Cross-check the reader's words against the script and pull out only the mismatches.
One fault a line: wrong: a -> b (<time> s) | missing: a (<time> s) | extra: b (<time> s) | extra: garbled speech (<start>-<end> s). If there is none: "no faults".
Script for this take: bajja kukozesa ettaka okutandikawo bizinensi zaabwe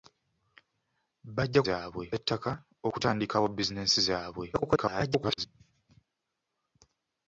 wrong: kukozesa -> zaabwe (1.6 s)
extra: garbled speech (4.5-5.5 s)